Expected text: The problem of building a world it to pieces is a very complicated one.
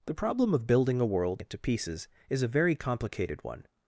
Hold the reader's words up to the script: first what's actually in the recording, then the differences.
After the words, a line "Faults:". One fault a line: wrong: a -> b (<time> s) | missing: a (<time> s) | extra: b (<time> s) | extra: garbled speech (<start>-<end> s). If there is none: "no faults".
The problem of building a world it to pieces is a very complicated one.
Faults:
no faults